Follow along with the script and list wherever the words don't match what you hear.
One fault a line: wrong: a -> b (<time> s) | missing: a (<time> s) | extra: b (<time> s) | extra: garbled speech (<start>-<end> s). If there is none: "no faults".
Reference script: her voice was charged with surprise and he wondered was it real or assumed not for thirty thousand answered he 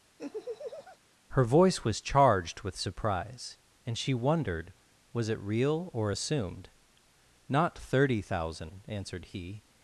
wrong: he -> she (4.0 s)
missing: for (7.8 s)